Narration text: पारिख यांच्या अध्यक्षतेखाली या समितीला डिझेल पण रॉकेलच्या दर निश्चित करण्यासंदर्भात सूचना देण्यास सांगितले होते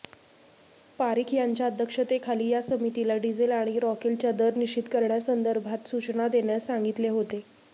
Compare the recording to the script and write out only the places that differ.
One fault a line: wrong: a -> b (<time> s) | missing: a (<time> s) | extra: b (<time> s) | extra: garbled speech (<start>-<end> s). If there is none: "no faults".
wrong: पण -> आणि (3.5 s)